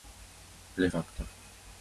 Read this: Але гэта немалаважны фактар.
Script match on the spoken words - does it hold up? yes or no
no